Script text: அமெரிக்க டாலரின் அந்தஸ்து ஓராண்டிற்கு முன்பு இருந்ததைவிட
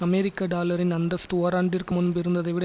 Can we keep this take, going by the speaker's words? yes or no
yes